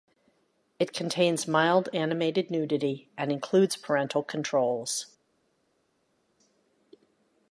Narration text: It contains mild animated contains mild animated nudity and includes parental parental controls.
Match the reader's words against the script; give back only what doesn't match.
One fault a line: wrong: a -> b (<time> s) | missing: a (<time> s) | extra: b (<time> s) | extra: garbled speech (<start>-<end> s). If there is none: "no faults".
missing: contains mild animated (2.5 s)
missing: parental (4.2 s)